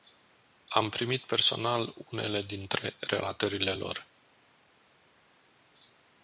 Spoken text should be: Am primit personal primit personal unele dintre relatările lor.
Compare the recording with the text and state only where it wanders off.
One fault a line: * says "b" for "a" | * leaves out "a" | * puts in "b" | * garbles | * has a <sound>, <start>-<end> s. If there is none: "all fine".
* leaves out "primit personal"